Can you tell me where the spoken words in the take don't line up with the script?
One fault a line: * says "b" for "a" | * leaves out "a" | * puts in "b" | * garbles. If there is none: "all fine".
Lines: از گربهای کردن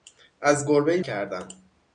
all fine